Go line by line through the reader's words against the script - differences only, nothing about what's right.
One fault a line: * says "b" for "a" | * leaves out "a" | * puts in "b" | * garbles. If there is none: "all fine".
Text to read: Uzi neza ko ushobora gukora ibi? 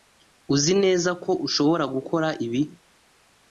all fine